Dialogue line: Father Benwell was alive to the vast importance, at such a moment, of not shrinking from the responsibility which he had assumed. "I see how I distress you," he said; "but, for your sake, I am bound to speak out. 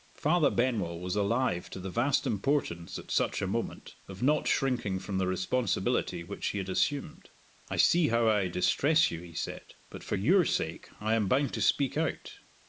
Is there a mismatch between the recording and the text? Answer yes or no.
no